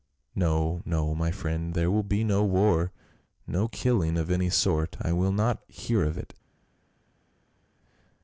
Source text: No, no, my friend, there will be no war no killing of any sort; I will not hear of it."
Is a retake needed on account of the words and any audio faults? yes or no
no